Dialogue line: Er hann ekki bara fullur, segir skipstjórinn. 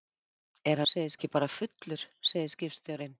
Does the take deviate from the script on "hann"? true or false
true